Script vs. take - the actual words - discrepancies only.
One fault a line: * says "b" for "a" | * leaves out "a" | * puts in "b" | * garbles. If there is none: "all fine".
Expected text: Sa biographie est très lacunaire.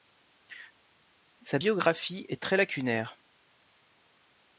all fine